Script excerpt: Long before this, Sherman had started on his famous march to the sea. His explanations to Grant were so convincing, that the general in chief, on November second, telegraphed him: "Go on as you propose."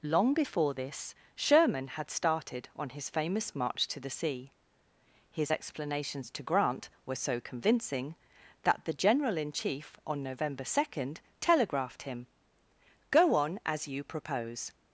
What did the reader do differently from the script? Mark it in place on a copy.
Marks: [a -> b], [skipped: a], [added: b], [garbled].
Long before this, Sherman had started on his famous march to the sea. His explanations to Grant were so convincing, that the general in chief, on November second, telegraphed him: "Go on as you propose."